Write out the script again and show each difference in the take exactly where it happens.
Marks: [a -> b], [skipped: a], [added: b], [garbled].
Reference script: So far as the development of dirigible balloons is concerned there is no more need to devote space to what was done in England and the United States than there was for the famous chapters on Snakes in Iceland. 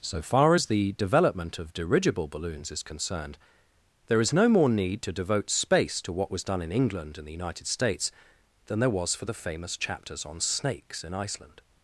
So far as the development of dirigible balloons is concerned there is no more need to devote space to what was done in England and the United States than there was for the famous chapters on Snakes in Iceland.